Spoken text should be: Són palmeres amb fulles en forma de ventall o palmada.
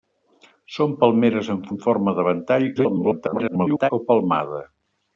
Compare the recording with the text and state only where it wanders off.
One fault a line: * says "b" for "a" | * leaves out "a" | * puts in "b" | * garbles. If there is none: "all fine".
* leaves out "fulles"
* garbles